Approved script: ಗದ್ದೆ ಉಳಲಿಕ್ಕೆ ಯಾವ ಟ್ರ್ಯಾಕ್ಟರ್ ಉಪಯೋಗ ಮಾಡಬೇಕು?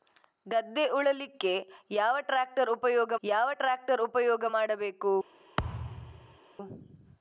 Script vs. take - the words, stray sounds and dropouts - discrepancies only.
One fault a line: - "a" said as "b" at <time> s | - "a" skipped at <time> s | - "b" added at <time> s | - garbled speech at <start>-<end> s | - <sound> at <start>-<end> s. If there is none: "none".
- "ಯಾವ ಟ್ರ್ಯಾಕ್ಟರ್ ಉಪಯೋಗ" added at 3.2 s
- thud at 5.6-6.4 s